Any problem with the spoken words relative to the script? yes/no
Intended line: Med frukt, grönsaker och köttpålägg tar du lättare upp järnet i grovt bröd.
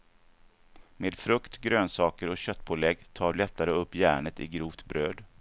yes